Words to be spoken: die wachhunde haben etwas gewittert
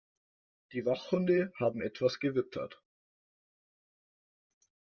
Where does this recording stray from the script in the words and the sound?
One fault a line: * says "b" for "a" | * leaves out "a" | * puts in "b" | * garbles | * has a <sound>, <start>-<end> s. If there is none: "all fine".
all fine